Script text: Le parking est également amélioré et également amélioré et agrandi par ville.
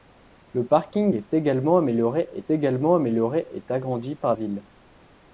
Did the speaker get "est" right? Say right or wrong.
right